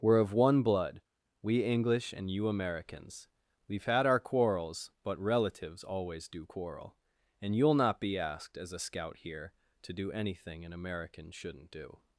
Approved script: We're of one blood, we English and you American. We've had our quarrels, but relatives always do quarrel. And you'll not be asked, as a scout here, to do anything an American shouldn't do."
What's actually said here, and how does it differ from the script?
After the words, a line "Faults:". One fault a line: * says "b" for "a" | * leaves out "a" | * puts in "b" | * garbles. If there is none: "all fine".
We're of one blood, we English and you Americans. We've had our quarrels, but relatives always do quarrel. And you'll not be asked, as a scout here, to do anything an American shouldn't do."
Faults:
* says "Americans" for "American"